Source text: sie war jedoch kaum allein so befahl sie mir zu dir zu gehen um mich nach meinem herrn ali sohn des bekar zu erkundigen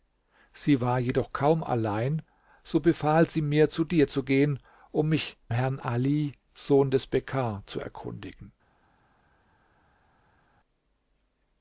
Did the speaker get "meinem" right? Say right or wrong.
wrong